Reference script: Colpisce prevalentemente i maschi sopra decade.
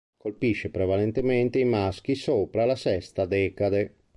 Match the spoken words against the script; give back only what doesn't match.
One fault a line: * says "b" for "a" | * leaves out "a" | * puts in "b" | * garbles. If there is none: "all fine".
* puts in "la sesta"